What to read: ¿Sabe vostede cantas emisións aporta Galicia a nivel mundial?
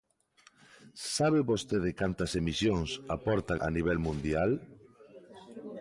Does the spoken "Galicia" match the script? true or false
false